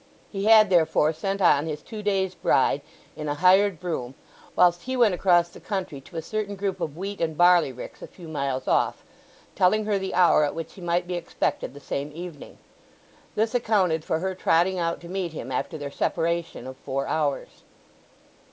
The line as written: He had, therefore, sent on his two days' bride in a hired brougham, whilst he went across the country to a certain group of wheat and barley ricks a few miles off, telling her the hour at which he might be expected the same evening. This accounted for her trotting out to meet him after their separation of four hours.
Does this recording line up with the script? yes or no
yes